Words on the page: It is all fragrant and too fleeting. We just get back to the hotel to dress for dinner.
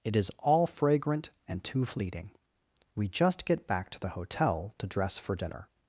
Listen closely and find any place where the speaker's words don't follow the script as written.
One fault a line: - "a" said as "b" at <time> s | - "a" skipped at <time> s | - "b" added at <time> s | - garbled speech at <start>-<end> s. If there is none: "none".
none